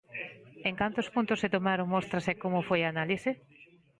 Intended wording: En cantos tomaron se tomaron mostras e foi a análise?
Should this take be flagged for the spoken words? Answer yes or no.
yes